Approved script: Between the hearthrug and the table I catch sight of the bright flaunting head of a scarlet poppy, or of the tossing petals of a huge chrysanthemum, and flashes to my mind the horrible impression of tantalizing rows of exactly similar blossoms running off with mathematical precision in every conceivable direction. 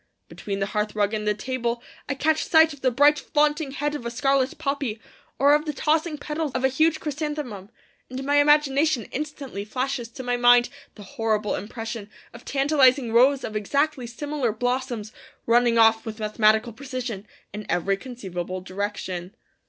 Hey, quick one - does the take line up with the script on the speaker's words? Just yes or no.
no